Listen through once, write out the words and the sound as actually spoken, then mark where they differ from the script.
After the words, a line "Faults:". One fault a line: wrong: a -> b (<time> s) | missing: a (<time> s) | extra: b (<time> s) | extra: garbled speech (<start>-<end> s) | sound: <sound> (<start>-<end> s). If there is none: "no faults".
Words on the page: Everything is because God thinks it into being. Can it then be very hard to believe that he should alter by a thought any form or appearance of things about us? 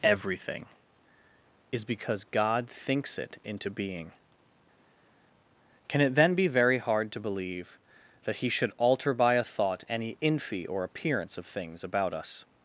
Everything is because God thinks it into being. Can it then be very hard to believe that he should alter by a thought any infy or appearance of things about us?
Faults:
wrong: form -> infy (10.2 s)